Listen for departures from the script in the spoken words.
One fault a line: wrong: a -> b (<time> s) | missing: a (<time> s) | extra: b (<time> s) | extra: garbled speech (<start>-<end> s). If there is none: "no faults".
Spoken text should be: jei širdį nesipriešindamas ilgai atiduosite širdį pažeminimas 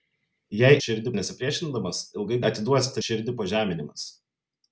no faults